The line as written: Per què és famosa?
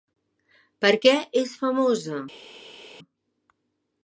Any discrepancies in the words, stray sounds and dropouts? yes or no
no